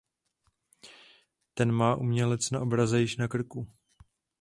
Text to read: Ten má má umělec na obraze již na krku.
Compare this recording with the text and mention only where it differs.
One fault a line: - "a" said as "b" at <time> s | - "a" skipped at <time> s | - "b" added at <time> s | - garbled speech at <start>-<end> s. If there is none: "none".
- "má" skipped at 1.9 s